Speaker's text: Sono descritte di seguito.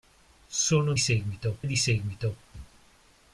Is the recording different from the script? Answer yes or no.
yes